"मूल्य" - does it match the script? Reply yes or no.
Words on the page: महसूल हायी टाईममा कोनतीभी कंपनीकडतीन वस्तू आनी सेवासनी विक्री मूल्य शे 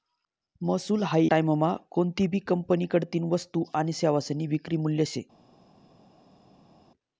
yes